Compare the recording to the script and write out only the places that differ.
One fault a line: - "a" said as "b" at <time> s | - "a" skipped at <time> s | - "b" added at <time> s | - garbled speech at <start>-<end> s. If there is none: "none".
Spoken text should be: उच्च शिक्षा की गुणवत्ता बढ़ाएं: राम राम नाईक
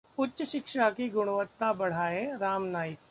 - "राम" skipped at 2.6 s